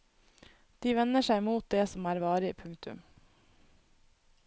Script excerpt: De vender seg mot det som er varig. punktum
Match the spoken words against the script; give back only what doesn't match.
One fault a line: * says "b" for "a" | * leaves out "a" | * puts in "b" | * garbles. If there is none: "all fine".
all fine